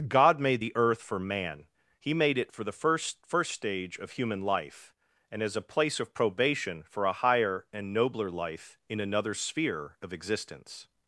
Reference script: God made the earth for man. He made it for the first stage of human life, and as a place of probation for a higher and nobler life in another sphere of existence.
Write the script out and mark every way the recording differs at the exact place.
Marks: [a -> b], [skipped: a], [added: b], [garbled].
God made the earth for man. He made it for the first [added: first] stage of human life, and as a place of probation for a higher and nobler life in another sphere of existence.